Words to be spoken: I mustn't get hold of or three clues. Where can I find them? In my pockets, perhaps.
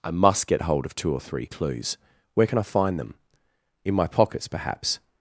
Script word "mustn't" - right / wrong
wrong